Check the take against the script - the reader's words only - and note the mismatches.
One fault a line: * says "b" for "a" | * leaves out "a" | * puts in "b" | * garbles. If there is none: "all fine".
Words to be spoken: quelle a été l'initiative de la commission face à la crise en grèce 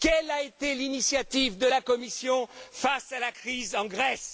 all fine